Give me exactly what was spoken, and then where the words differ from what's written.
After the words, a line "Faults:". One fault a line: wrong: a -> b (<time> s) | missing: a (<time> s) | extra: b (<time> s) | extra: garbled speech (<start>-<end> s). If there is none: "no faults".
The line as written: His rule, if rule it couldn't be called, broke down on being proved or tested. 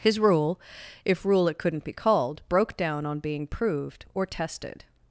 His rule, if rule it couldn't be called, broke down on being proved or tested.
Faults:
no faults